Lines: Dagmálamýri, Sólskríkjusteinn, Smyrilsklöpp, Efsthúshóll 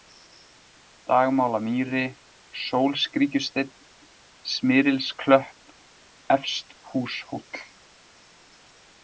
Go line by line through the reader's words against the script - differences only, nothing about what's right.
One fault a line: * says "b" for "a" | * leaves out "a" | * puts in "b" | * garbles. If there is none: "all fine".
all fine